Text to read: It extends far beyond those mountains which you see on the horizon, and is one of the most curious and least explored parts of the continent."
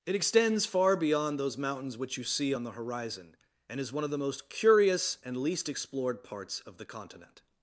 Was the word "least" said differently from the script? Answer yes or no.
no